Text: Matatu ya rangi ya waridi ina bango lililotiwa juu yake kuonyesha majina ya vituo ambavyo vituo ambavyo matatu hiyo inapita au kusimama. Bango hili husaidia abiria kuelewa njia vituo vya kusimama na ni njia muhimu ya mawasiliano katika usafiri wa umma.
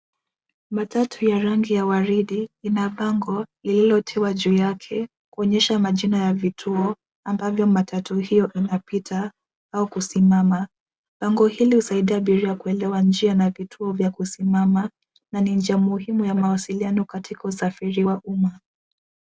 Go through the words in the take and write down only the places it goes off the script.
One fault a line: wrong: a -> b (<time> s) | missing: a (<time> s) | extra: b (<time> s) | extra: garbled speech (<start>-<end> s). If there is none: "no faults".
missing: vituo ambavyo (7.7 s)
extra: na (13.3 s)